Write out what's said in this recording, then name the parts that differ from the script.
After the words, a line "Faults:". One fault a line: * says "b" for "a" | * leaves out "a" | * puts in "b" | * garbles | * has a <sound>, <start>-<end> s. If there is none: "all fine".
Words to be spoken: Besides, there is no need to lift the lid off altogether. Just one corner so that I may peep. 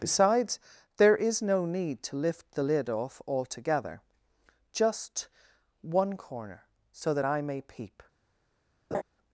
Besides, there is no need to lift the lid off altogether. Just one corner so that I may peep.
Faults:
* has a laugh, 8.9-9.0 s